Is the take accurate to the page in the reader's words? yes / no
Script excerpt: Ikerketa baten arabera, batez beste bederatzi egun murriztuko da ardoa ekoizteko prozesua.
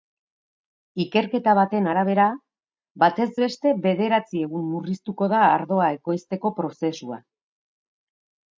yes